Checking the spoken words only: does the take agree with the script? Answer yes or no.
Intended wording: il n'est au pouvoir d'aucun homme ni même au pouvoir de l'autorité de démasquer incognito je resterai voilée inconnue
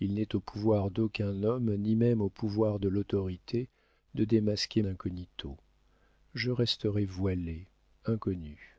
yes